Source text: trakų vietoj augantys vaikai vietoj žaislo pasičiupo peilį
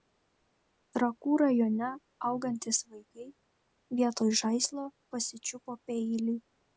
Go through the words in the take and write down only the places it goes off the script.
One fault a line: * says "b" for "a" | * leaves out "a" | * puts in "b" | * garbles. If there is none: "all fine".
* says "rajone" for "vietoj"